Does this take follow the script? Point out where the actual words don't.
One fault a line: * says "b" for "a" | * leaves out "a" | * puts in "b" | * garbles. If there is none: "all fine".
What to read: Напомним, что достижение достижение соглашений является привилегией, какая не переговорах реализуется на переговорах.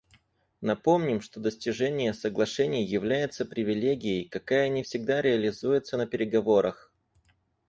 * leaves out "достижение"
* says "всегда" for "переговорах"